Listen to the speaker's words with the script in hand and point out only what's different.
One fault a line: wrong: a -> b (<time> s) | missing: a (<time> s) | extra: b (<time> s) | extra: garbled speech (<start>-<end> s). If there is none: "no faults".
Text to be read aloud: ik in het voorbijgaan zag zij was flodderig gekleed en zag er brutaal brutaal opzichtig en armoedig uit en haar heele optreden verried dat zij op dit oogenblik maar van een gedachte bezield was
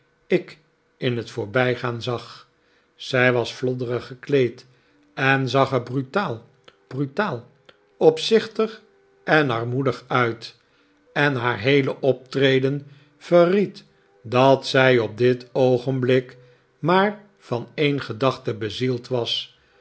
no faults